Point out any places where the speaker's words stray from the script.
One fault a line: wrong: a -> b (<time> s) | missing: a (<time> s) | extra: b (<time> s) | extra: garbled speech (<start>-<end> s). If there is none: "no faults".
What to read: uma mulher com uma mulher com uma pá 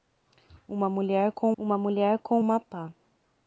no faults